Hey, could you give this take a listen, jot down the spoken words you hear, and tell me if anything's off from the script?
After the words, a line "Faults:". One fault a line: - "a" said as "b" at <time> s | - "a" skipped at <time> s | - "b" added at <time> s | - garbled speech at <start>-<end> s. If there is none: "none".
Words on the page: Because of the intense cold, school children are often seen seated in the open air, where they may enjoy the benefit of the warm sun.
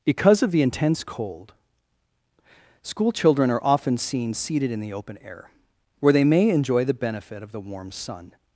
Because of the intense cold, school children are often seen seated in the open air, where they may enjoy the benefit of the warm sun.
Faults:
none